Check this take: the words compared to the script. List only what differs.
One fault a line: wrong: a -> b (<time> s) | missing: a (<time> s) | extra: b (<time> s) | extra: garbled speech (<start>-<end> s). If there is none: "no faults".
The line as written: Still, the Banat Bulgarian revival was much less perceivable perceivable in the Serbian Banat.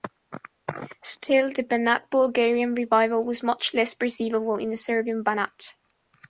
missing: perceivable (4.6 s)